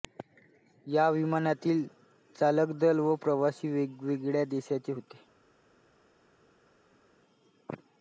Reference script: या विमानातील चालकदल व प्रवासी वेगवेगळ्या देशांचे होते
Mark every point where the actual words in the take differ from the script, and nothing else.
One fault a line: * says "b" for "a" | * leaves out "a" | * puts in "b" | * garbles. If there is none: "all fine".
all fine